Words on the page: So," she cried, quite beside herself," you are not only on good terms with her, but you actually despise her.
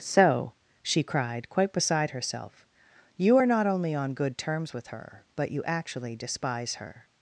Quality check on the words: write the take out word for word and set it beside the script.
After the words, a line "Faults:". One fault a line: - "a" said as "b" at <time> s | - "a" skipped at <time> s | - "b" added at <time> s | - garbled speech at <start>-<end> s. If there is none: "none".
So," she cried, quite beside herself," you are not only on good terms with her, but you actually despise her.
Faults:
none